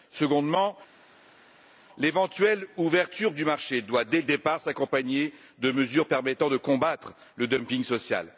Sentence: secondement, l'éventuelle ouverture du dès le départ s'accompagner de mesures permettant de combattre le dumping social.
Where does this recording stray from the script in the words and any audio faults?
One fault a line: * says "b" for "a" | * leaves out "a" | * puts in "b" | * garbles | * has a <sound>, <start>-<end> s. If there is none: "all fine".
* puts in "marché doit"